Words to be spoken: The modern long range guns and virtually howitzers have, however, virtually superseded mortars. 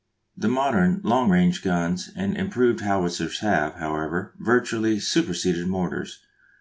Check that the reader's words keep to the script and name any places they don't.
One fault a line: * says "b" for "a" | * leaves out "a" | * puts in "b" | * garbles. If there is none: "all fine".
* says "improved" for "virtually"